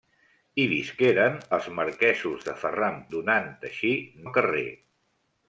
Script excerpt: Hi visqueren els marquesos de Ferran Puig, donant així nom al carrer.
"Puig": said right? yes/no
no